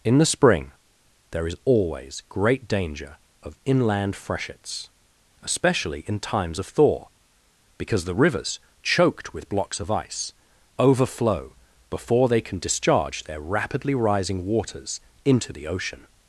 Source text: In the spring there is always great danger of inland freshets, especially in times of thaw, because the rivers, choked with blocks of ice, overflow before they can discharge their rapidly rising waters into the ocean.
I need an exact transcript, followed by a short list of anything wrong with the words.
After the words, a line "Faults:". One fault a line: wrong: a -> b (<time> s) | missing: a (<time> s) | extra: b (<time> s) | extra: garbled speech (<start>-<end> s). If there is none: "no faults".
In the spring there is always great danger of inland freshets, especially in times of thaw, because the rivers, choked with blocks of ice, overflow before they can discharge their rapidly rising waters into the ocean.
Faults:
no faults